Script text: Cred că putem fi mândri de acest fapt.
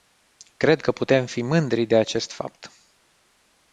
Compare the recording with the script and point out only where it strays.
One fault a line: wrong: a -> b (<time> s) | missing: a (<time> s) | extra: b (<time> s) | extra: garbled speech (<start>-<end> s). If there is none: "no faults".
no faults